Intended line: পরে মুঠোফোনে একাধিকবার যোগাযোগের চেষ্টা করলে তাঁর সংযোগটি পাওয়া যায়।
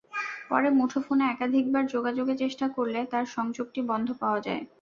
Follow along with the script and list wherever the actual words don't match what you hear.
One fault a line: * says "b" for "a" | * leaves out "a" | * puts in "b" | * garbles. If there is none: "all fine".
* puts in "বন্ধ"